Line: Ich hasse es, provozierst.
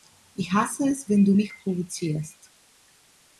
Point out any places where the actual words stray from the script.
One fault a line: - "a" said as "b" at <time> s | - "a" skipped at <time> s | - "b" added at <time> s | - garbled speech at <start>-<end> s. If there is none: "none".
- "wenn du mich" added at 1.1 s